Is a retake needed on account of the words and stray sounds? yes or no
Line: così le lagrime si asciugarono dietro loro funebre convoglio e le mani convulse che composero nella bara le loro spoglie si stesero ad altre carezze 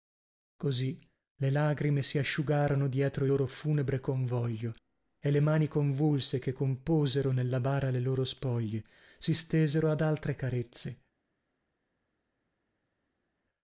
no